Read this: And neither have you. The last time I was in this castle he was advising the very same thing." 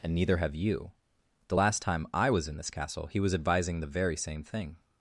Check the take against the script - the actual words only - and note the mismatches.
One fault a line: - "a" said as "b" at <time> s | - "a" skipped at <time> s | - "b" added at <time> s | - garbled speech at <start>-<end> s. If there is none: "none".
none